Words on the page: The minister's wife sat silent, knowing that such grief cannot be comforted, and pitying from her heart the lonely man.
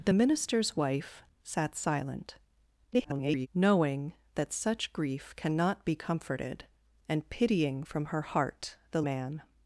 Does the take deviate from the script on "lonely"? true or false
true